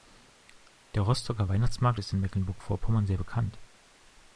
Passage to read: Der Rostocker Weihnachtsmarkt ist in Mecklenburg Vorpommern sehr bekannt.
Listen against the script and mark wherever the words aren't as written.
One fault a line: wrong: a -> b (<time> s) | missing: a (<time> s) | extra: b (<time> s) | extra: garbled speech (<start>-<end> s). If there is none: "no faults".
no faults